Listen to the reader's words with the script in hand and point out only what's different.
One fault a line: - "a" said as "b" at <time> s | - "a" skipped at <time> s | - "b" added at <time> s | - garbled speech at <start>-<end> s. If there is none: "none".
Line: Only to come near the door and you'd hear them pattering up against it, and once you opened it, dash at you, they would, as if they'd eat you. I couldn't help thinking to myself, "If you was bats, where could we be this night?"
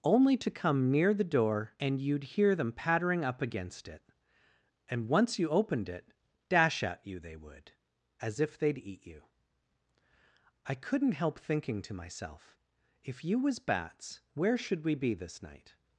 - "could" said as "should" at 14.6 s